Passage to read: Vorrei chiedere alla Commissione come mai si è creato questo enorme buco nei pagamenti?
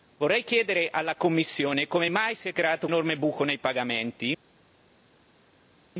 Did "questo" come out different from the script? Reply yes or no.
yes